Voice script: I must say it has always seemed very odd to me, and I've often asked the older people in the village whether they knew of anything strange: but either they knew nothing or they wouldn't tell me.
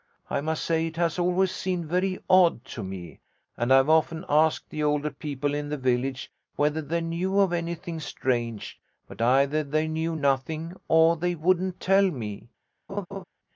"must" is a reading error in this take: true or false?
false